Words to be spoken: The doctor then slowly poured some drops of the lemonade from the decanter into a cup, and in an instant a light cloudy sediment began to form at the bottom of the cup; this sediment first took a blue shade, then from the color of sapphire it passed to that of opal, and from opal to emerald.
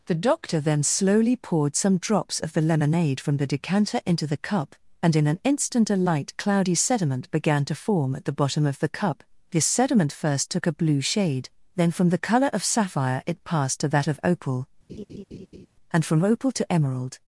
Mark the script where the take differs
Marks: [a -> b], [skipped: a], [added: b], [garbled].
The doctor then slowly poured some drops of the lemonade from the decanter into [a -> the] cup, and in an instant a light cloudy sediment began to form at the bottom of the cup; this sediment first took a blue shade, then from the color of sapphire it passed to that of opal, and from opal to emerald.